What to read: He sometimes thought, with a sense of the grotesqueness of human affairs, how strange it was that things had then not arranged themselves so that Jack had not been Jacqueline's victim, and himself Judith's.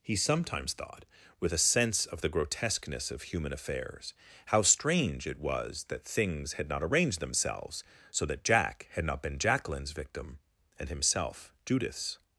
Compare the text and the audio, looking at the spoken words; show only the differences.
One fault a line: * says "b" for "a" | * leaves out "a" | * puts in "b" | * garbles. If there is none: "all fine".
* leaves out "then"